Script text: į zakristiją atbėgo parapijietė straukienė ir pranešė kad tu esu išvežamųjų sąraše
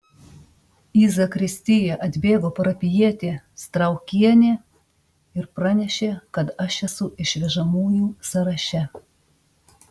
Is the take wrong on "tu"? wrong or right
wrong